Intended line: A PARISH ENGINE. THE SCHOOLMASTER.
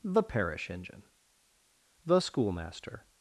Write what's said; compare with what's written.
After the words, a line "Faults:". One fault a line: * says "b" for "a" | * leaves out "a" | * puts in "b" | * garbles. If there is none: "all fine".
THE PARISH ENGINE. THE SCHOOLMASTER.
Faults:
* says "THE" for "A"